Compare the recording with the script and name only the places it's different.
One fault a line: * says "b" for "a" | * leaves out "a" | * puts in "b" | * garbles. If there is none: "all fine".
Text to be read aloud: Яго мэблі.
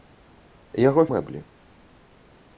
all fine